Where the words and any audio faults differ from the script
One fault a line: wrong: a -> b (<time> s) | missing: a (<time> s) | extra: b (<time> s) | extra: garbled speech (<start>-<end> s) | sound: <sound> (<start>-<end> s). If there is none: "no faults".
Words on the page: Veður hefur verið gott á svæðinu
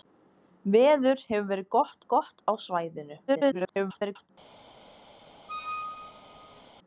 extra: gott (2.1 s)
extra: garbled speech (3.3-4.3 s)
sound: squeak (5.5-6.6 s)